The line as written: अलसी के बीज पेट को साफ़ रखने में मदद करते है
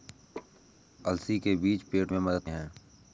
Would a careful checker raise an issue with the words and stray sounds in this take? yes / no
yes